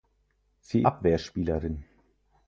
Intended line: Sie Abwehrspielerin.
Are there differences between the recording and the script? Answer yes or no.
no